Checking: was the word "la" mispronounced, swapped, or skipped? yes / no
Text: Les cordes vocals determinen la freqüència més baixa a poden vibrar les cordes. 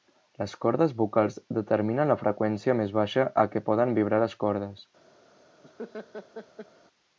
no